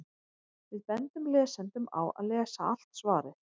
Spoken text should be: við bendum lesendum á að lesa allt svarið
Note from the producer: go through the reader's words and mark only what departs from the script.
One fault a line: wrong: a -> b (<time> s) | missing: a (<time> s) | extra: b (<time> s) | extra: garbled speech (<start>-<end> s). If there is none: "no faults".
no faults